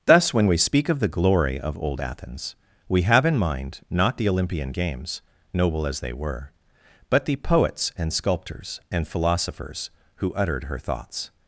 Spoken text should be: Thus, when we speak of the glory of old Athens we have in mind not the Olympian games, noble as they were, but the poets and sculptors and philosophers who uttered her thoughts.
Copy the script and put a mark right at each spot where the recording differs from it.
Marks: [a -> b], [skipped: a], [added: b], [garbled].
Thus, when we speak of the glory of old Athens we have in mind not the Olympian games, noble as they were, but the poets and sculptors and philosophers who uttered her thoughts.